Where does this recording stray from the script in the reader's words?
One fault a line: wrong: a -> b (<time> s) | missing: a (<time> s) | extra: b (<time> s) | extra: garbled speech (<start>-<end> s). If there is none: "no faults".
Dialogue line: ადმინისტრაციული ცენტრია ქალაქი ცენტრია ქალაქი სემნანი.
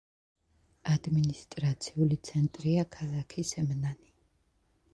missing: ცენტრია ქალაქი (3.5 s)